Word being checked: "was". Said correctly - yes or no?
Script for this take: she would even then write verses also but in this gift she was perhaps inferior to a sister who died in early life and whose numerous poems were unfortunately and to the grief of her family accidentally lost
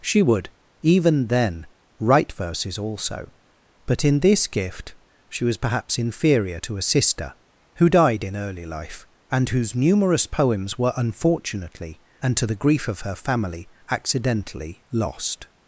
yes